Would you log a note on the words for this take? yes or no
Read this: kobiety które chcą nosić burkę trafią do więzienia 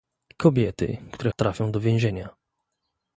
yes